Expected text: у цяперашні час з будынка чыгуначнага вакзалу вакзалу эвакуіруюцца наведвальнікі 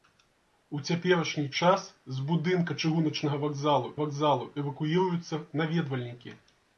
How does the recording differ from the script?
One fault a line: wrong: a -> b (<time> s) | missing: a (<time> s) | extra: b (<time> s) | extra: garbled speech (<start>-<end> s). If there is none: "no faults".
no faults